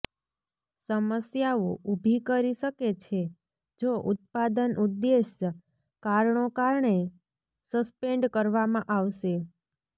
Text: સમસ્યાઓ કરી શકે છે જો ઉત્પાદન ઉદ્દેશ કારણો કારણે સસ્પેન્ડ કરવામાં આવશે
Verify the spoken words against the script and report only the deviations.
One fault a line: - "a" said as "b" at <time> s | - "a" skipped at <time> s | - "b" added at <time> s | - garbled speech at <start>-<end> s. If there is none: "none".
- "ઊભી" added at 1.9 s